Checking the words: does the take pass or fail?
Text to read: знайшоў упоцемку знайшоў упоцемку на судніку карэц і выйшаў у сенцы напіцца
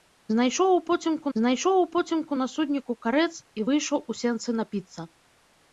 pass